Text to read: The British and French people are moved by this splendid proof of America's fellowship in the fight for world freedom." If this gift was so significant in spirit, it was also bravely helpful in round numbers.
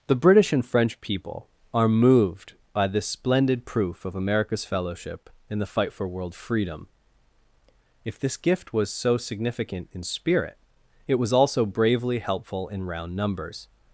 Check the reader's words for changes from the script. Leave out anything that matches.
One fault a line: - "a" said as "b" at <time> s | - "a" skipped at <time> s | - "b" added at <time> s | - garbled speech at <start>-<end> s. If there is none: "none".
none